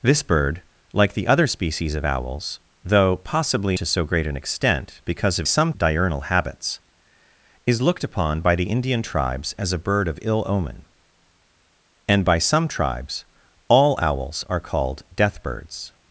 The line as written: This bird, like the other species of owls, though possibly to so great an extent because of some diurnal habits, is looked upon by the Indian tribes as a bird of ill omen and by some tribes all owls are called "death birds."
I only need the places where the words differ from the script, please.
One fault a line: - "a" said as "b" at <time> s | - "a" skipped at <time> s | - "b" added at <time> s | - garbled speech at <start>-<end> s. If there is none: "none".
none